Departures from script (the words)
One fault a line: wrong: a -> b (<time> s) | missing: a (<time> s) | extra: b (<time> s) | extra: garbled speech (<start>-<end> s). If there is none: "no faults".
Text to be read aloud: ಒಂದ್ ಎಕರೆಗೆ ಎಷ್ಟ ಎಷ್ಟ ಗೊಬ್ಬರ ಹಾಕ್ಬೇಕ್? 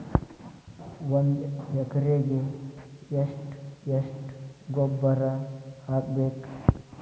no faults